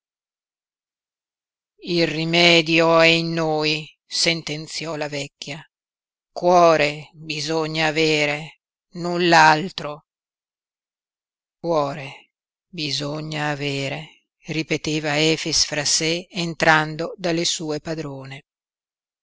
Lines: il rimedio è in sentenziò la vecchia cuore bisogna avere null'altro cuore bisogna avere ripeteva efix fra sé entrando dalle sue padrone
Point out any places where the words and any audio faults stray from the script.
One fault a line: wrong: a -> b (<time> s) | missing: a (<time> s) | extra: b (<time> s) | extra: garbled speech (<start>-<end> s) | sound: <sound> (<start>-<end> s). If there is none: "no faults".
extra: noi (3.3 s)